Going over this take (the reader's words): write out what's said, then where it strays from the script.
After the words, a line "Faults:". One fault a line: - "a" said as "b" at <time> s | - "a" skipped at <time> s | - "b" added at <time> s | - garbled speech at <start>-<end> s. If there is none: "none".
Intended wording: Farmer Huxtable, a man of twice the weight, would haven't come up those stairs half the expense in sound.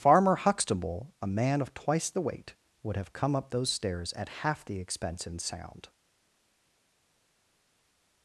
Farmer Huxtable, a man of twice the weight, would have come up those stairs at half the expense in sound.
Faults:
- "haven't" said as "have" at 3.0 s
- "at" added at 4.1 s